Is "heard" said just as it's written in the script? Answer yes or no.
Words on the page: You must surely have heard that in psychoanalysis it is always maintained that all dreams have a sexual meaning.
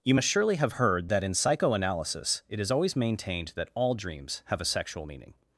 yes